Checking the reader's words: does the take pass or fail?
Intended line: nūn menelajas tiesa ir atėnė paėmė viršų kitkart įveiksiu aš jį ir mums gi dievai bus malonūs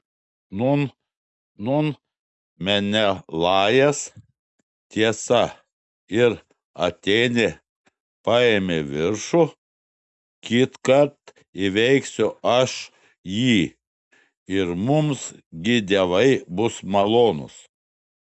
fail